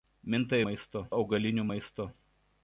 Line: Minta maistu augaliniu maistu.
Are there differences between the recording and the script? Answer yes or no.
no